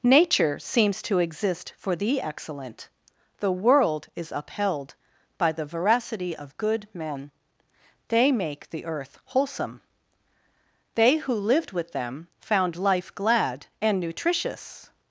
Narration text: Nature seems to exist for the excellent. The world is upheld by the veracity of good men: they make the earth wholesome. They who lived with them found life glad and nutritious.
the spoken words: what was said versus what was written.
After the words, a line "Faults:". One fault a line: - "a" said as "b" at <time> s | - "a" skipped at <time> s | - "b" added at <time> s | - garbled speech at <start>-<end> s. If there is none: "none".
Nature seems to exist for the excellent. The world is upheld by the veracity of good men: they make the earth wholesome. They who lived with them found life glad and nutritious.
Faults:
none